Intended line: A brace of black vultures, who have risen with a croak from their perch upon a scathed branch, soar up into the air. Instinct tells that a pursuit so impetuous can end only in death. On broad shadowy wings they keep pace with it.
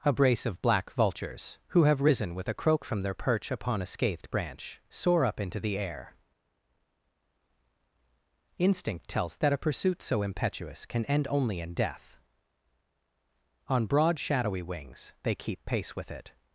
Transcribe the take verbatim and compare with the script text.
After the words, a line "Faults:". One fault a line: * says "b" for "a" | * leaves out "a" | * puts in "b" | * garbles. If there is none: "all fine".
A brace of black vultures, who have risen with a croak from their perch upon a scathed branch, soar up into the air. Instinct tells that a pursuit so impetuous can end only in death. On broad shadowy wings they keep pace with it.
Faults:
all fine